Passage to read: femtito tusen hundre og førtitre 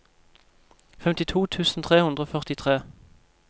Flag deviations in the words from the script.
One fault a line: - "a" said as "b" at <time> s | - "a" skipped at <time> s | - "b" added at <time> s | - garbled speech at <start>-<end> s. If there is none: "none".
- "tre" added at 1.8 s